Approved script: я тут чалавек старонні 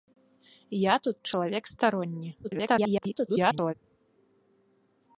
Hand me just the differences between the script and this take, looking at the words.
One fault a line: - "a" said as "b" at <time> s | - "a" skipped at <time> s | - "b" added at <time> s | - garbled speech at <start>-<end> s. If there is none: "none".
- garbled speech at 2.4-3.7 s